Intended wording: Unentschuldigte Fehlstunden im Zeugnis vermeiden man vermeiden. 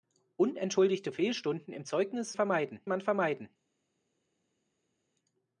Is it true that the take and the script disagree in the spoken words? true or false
false